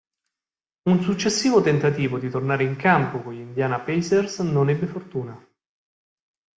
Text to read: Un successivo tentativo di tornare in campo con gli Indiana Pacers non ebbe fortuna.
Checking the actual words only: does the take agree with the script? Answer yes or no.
yes